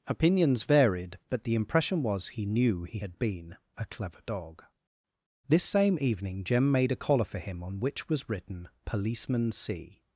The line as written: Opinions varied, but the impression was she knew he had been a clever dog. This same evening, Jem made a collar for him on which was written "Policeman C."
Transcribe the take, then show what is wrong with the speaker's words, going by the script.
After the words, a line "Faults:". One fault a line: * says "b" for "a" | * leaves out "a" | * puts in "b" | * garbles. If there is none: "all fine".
Opinions varied, but the impression was he knew he had been a clever dog. This same evening, Jem made a collar for him on which was written "Policeman C."
Faults:
* says "he" for "she"